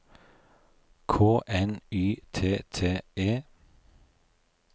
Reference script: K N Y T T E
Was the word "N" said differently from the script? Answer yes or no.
no